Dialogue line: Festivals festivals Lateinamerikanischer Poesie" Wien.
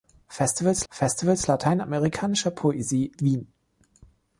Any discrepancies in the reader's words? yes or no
no